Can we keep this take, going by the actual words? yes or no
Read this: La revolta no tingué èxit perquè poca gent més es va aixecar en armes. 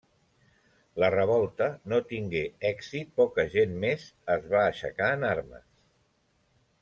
no